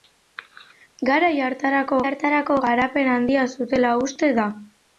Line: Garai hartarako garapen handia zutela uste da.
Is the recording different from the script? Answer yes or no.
yes